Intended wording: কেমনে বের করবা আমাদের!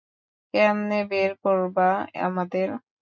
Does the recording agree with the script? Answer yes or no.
yes